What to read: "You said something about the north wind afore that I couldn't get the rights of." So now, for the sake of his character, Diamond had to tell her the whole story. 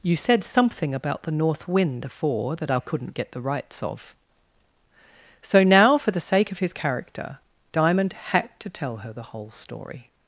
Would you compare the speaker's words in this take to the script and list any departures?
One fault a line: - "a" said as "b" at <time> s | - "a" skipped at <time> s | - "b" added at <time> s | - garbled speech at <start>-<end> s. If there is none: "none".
none